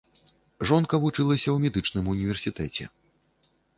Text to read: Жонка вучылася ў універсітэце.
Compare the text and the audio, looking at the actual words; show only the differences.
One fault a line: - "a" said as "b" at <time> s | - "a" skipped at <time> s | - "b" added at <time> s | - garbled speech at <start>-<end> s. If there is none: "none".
- "медычным" added at 1.6 s